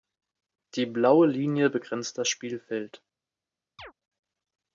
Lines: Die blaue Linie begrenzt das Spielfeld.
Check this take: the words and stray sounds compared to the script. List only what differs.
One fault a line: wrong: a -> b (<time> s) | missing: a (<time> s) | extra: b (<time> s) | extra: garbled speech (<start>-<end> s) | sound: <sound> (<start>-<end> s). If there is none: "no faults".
sound: chirp (3.8-3.9 s)